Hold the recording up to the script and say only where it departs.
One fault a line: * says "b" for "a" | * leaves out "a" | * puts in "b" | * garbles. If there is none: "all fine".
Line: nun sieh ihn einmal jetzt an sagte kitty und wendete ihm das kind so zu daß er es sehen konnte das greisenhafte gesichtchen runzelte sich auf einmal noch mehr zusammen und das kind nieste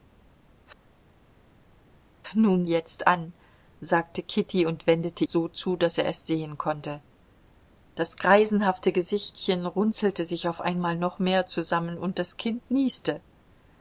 * leaves out "sieh ihn einmal"
* leaves out "ihm das kind"